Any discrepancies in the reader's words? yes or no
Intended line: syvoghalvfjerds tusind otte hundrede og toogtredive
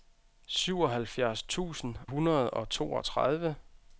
yes